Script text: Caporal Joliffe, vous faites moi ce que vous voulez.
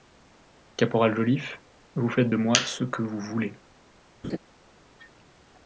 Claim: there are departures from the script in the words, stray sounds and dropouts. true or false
true